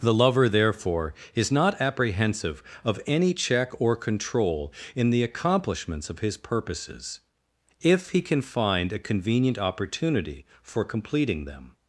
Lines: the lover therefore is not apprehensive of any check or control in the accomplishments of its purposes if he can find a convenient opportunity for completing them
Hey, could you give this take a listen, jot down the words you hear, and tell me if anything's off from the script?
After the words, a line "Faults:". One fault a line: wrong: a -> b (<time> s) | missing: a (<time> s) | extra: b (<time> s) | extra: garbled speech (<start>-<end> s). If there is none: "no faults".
the lover therefore is not apprehensive of any check or control in the accomplishments of his purposes if he can find a convenient opportunity for completing them
Faults:
wrong: its -> his (6.2 s)